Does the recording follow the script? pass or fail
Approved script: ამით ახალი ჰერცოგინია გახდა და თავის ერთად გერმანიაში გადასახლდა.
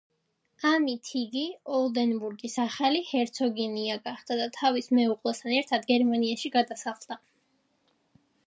fail